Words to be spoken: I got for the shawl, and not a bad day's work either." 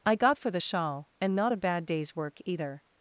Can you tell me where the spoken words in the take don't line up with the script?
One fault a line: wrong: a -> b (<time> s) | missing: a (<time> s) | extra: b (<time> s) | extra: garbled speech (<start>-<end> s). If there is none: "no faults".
no faults